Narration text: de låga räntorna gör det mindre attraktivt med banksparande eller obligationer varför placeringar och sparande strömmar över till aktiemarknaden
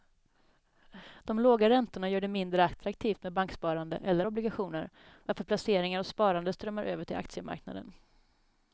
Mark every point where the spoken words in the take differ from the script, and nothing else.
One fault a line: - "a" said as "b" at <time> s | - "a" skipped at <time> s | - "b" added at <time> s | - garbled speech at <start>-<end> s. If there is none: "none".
none